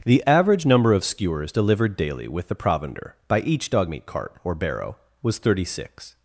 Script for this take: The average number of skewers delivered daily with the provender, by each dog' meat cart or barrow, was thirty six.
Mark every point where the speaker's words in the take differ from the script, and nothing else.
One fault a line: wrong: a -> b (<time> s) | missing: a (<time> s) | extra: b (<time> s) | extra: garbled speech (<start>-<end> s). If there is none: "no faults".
no faults